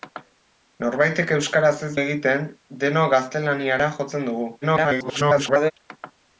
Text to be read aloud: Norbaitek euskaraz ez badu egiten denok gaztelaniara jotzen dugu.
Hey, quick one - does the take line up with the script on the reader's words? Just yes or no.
no